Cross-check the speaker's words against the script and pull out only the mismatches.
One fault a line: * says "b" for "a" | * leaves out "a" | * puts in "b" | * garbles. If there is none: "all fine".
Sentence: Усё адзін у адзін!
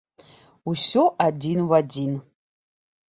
all fine